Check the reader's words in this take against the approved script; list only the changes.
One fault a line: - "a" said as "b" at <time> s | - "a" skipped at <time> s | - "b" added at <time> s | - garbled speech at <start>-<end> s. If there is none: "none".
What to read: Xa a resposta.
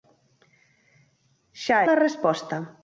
none